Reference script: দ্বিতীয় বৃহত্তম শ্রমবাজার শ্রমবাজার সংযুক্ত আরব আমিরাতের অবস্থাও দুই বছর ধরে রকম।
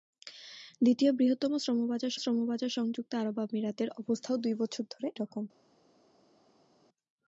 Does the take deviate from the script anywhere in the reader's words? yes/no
no